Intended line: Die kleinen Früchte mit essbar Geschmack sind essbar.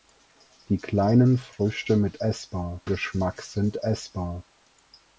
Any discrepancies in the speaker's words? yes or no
no